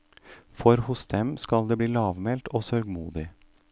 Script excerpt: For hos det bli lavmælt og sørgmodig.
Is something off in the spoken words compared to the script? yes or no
yes